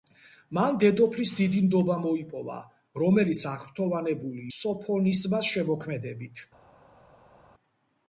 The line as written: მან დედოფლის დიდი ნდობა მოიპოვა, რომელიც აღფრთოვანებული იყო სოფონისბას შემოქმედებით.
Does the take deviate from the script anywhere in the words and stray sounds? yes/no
yes